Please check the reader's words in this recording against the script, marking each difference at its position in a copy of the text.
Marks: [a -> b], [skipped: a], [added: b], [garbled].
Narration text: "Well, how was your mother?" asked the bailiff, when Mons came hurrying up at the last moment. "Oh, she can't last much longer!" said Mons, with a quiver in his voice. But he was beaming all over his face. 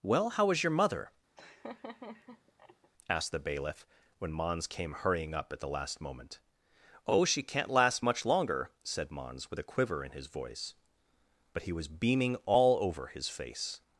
"Well, how [was -> is] your mother?" asked the bailiff, when Mons came hurrying up at the last moment. "Oh, she can't last much longer!" said Mons, with a quiver in his voice. But he was beaming all over his face.